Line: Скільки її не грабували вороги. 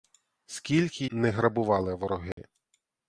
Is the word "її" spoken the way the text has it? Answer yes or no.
no